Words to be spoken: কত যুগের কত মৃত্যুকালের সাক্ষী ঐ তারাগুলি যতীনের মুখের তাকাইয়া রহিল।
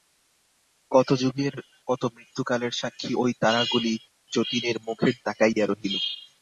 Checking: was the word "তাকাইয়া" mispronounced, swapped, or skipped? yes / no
no